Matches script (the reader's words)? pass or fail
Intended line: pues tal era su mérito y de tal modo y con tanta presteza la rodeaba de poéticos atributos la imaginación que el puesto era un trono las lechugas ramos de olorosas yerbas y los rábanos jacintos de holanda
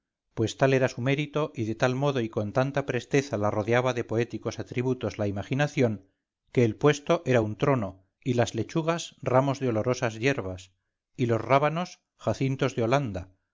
fail